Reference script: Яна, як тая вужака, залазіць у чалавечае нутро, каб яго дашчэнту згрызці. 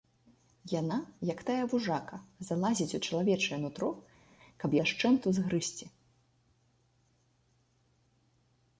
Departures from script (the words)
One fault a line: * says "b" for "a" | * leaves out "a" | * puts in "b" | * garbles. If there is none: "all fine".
* leaves out "яго"